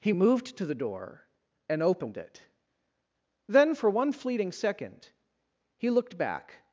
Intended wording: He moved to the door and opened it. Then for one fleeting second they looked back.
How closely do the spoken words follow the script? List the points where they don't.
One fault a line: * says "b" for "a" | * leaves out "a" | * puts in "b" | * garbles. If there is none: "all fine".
* says "he" for "they"